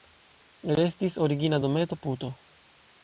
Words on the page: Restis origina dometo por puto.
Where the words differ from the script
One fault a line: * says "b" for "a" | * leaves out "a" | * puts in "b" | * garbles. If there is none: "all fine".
* leaves out "por"